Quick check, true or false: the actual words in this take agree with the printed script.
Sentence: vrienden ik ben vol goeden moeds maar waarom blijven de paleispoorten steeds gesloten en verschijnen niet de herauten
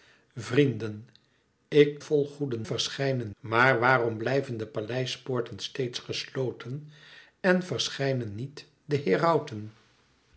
false